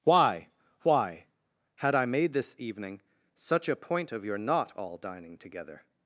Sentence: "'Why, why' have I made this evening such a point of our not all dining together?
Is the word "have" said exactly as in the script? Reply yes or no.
no